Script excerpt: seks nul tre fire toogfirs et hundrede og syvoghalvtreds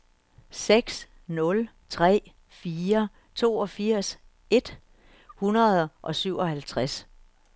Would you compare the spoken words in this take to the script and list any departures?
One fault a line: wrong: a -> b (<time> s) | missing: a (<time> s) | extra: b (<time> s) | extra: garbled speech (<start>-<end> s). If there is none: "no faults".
no faults